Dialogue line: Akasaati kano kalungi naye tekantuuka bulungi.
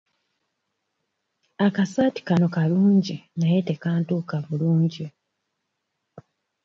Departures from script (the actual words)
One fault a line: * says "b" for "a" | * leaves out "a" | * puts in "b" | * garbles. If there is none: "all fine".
all fine